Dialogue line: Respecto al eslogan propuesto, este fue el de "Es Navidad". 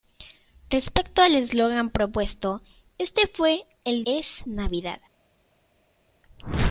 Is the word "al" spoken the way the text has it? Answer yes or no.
yes